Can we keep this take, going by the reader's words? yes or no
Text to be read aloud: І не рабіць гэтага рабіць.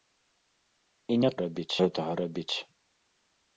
yes